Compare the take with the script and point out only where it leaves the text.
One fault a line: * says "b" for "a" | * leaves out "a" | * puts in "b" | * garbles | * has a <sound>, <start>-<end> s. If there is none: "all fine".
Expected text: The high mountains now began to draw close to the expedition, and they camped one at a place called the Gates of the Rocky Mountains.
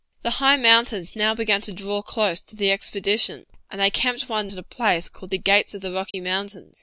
* has a dropout, 6.1-6.1 s